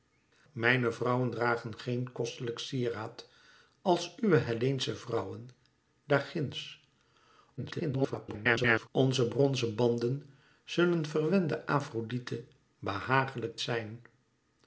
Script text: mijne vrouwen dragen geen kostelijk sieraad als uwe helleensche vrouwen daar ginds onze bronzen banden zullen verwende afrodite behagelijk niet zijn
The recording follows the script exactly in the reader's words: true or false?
false